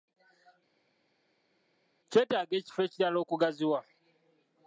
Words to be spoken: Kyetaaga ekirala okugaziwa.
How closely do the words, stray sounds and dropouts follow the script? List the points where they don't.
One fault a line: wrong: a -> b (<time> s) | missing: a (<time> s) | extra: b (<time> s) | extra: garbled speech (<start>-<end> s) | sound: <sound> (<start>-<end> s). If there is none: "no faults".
extra: ekifo (2.6 s)